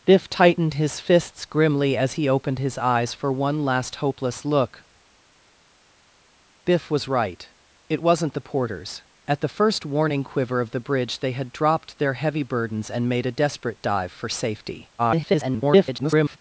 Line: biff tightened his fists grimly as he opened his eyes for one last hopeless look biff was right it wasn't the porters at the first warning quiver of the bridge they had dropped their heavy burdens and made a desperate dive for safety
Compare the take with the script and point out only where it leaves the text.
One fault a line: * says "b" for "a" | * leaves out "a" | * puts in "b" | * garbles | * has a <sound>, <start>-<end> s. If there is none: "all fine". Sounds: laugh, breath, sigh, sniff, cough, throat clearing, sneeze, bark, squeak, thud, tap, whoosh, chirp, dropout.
* garbles